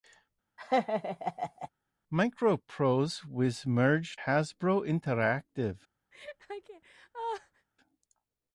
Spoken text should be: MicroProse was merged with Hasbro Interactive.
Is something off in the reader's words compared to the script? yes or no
yes